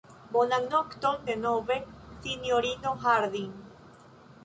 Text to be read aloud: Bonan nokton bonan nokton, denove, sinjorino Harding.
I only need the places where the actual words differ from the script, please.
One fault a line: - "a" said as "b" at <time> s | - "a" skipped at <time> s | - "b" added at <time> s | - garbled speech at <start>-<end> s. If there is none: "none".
- "bonan nokton" skipped at 1.2 s